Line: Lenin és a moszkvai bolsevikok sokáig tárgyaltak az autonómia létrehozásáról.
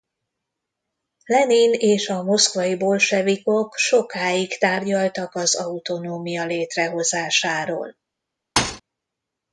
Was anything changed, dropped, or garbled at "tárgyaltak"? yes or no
no